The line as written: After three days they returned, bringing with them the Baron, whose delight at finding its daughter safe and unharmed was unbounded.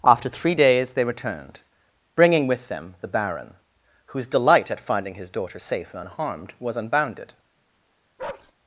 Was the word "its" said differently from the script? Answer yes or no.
yes